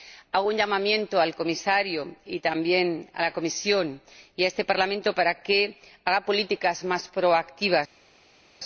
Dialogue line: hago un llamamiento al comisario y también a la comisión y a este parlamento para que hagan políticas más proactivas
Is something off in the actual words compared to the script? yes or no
no